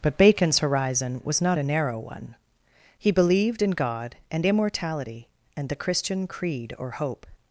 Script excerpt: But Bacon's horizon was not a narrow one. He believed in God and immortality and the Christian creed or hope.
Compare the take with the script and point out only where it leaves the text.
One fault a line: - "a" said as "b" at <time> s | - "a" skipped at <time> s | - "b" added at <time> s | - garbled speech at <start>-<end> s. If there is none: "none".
none